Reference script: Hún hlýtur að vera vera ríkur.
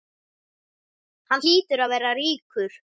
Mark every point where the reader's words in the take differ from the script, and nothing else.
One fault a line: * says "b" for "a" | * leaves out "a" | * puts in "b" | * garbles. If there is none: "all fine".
* says "Hann" for "Hún"
* leaves out "vera"